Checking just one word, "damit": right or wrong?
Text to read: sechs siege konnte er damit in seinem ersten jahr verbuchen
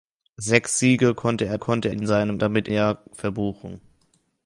wrong